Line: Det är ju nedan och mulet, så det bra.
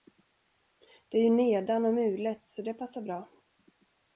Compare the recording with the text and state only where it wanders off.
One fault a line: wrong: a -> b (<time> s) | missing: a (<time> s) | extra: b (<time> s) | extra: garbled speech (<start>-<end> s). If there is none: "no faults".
extra: passar (2.7 s)